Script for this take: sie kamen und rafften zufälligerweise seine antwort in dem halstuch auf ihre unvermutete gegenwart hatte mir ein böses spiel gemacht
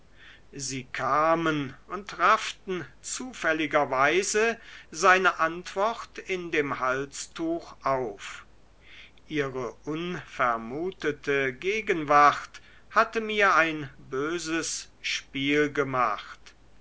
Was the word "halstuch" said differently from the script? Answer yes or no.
no